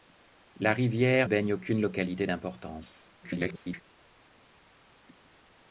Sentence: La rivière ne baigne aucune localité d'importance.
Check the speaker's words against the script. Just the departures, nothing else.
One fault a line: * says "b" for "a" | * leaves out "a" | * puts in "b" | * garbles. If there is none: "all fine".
* leaves out "ne"
* garbles